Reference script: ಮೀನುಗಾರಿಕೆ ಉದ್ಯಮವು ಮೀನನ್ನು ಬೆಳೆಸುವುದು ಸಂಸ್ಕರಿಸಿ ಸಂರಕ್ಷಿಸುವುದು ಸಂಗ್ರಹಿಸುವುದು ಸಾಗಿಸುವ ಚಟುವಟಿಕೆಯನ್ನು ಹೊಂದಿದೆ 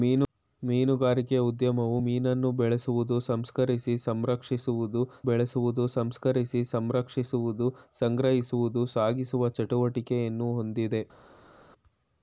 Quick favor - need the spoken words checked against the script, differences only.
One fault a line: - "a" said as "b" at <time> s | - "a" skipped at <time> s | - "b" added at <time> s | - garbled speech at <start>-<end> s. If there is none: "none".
- "ಬೆಳೆಸುವುದು ಸಂಸ್ಕರಿಸಿ ಸಂರಕ್ಷಿಸುವುದು" added at 5.2 s